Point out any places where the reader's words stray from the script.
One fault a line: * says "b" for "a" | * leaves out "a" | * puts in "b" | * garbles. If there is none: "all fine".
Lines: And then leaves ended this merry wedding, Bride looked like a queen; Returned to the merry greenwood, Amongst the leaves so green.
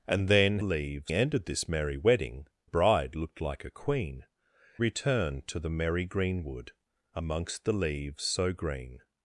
all fine